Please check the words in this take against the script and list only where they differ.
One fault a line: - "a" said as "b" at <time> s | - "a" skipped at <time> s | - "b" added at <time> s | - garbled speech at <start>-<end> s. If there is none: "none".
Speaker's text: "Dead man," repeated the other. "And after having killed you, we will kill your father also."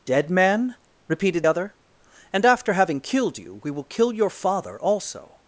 - "the" skipped at 1.4 s